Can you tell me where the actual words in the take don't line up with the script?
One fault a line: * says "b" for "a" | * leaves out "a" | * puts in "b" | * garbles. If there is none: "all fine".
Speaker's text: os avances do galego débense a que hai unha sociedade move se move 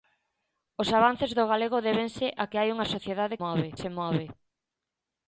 all fine